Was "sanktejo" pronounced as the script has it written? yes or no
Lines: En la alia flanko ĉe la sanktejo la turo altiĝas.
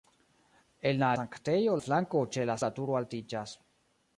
no